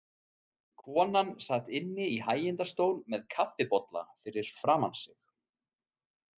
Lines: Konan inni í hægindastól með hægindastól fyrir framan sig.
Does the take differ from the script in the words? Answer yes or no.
yes